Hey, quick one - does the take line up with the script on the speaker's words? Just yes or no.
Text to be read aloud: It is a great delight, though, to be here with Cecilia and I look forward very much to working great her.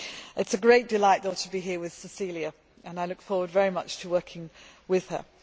no